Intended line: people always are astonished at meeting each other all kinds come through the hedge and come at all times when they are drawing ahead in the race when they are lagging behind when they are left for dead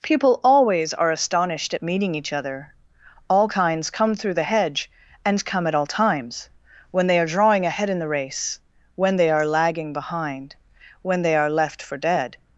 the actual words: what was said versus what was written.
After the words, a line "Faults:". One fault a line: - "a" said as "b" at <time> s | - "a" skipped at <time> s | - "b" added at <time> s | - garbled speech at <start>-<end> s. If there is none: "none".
people always are astonished at meeting each other all kinds come through the hedge and come at all times when they are drawing ahead in the race when they are lagging behind when they are left for dead
Faults:
none